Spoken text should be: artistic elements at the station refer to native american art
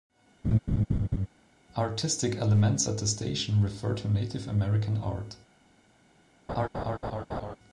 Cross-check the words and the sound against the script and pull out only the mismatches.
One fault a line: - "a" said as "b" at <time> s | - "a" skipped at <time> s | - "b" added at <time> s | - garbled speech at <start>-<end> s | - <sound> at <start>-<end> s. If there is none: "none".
- laugh at 0.4-1.3 s
- laugh at 6.5-7.6 s